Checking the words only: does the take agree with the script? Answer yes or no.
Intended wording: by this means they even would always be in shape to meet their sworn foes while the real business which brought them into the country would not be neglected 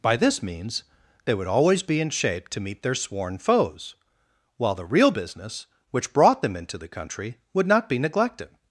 no